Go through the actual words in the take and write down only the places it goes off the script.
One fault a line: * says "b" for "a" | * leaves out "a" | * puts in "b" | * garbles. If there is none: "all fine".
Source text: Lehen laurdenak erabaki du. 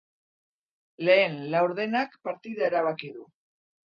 * puts in "partida"